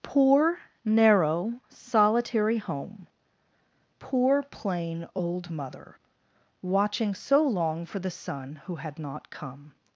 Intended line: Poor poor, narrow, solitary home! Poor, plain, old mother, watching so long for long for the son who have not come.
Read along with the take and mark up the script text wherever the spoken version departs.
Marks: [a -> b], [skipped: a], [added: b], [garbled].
Poor [skipped: poor,] narrow, solitary home! Poor, plain, old mother, watching so long for [skipped: long for] the son who [have -> had] not come.